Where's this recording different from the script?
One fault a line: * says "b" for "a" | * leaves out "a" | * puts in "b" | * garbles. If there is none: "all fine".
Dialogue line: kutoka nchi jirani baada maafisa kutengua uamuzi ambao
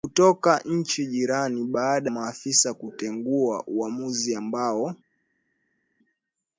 all fine